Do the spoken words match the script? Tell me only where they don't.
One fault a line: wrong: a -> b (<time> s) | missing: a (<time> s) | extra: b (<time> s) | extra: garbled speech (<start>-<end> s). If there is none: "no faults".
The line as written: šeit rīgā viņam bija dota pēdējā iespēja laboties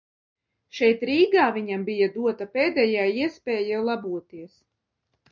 no faults